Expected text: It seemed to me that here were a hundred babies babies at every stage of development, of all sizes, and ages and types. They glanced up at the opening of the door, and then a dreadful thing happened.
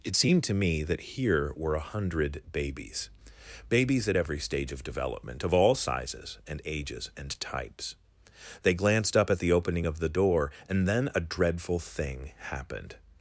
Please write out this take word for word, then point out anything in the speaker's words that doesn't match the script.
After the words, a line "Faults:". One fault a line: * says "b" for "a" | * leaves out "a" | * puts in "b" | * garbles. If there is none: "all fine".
It seemed to me that here were a hundred babies babies at every stage of development, of all sizes, and ages and types. They glanced up at the opening of the door, and then a dreadful thing happened.
Faults:
all fine